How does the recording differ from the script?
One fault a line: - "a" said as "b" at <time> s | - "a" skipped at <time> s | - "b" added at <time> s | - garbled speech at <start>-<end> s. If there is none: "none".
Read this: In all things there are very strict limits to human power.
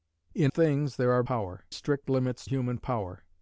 - "all" skipped at 0.5 s
- "very" said as "power" at 1.2 s
- "to" skipped at 2.5 s